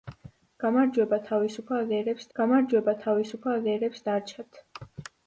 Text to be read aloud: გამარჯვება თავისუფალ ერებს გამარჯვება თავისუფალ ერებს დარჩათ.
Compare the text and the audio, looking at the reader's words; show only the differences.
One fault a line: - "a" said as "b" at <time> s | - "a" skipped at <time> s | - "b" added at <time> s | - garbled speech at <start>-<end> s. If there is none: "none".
none